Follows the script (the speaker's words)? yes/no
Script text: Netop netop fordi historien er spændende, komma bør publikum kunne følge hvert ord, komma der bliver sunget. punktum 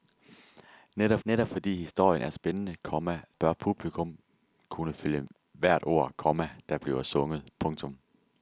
yes